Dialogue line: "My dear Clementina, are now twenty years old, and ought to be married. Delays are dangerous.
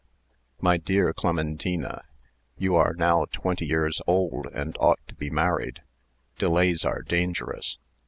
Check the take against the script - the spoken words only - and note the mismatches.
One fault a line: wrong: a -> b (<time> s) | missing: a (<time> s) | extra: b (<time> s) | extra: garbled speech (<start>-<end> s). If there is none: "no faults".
extra: you (2.6 s)